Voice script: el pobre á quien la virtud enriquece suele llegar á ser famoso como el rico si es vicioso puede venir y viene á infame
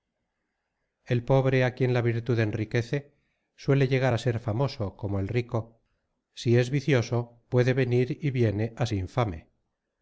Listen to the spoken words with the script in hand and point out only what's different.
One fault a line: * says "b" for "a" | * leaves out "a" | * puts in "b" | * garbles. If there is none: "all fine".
all fine